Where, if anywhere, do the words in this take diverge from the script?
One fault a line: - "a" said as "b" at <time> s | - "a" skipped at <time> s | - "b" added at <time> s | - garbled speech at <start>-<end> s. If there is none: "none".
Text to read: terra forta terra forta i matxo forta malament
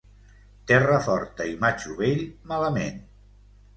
- "terra forta" skipped at 1.5 s
- "forta" said as "vell" at 2.0 s